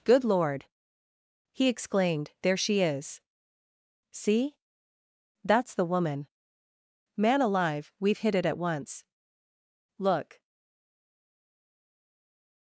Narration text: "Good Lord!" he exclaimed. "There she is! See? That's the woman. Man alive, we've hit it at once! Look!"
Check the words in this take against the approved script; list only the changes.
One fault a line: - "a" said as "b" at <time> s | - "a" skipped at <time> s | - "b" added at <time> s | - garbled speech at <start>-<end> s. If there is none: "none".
none